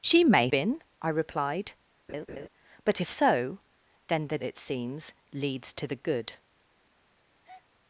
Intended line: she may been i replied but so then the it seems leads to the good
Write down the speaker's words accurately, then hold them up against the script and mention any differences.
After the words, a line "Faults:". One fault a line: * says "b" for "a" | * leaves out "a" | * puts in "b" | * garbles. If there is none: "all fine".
she may been i replied but so then the it seems leads to the good
Faults:
all fine